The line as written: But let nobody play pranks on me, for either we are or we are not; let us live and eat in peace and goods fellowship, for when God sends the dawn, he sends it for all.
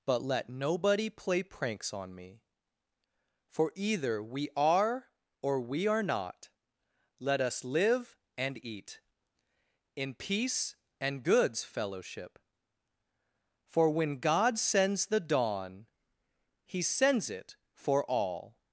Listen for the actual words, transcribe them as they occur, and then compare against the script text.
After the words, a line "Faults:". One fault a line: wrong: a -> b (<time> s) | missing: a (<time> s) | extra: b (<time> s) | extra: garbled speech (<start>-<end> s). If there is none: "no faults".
But let nobody play pranks on me, for either we are or we are not; let us live and eat in peace and goods fellowship, for when God sends the dawn, he sends it for all.
Faults:
no faults